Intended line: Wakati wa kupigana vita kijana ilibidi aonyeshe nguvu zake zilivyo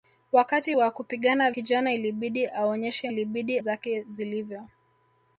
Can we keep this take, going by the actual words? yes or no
no